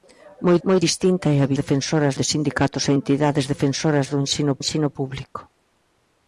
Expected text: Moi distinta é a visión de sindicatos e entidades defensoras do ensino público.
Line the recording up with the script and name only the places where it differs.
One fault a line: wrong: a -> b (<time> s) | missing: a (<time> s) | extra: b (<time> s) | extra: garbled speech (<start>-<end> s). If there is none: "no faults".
extra: moi (0.7 s)
wrong: visión -> defensoras (1.6 s)
extra: ensino (4.6 s)